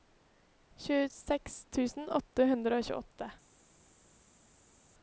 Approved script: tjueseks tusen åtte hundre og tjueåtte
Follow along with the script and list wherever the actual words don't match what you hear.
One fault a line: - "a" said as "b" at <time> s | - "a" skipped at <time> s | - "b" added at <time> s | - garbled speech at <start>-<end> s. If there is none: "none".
none